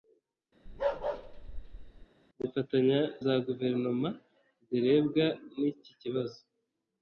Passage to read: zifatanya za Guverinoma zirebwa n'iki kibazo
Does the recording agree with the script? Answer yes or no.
yes